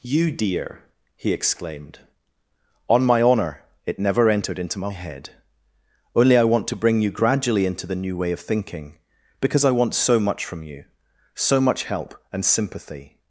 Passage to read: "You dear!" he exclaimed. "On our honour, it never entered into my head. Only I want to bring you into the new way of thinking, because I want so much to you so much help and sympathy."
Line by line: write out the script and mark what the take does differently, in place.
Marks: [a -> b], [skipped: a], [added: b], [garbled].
"You dear!" he exclaimed. "On [our -> my] honour, it never entered into my head. Only I want to bring you [added: gradually] into the new way of thinking, because I want so much [to -> from] you so much help and sympathy."